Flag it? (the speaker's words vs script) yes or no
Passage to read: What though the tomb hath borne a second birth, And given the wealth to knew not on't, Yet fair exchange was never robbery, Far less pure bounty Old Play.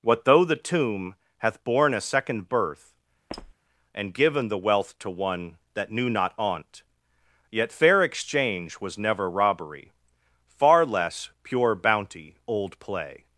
yes